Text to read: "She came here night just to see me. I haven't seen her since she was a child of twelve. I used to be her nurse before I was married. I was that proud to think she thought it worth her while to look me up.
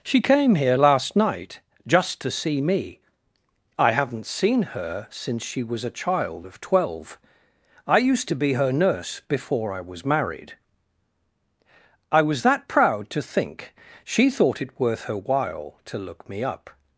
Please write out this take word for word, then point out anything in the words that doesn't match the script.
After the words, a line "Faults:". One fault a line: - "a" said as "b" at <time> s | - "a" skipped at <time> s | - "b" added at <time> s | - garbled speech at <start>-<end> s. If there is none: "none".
"She came here last night just to see me. I haven't seen her since she was a child of twelve. I used to be her nurse before I was married. I was that proud to think she thought it worth her while to look me up.
Faults:
- "last" added at 0.7 s